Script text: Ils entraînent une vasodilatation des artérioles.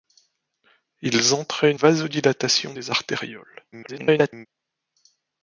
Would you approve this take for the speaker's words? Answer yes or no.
no